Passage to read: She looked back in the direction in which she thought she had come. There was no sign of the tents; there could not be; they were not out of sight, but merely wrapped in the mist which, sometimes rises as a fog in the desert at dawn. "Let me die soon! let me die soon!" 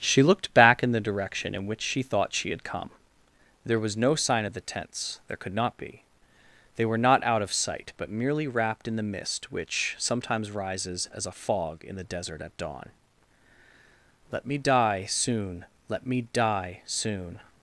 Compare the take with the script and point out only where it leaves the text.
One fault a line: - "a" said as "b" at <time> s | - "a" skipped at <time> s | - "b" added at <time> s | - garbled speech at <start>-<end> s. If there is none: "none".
none